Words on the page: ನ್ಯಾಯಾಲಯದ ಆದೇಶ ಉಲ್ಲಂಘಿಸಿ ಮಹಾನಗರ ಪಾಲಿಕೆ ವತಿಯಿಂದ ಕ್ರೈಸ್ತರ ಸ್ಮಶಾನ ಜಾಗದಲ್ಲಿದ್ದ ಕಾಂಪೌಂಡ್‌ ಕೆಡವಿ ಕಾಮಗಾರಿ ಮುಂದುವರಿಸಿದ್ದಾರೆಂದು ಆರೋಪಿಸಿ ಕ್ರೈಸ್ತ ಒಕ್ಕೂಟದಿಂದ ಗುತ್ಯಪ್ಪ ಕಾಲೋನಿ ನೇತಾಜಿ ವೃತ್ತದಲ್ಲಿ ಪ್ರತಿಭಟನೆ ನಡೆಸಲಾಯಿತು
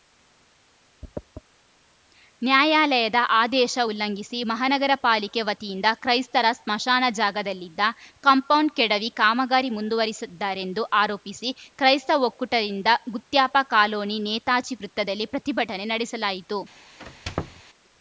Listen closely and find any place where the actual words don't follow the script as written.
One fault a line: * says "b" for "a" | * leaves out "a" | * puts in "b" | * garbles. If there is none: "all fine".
all fine